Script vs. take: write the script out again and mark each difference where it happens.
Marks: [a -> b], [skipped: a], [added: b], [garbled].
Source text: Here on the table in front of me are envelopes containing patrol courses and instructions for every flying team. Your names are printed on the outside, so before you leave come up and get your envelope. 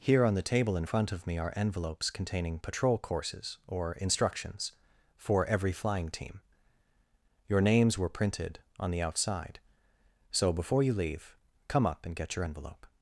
Here on the table in front of me are envelopes containing patrol courses [and -> or] instructions for every flying team. Your names [are -> were] printed on the outside, so before you leave come up and get your envelope.